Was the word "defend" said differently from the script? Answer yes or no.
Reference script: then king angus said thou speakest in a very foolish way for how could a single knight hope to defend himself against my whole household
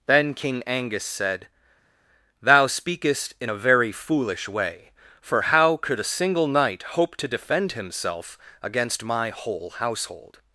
no